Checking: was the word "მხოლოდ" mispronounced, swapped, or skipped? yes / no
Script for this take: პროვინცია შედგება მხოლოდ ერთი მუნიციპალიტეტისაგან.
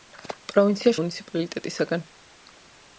yes